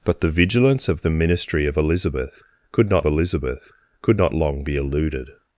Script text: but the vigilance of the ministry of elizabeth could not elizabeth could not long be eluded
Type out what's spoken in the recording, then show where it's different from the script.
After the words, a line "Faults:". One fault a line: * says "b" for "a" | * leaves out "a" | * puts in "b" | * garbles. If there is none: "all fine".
but the vigilance of the ministry of elizabeth could not elizabeth could not long be eluded
Faults:
all fine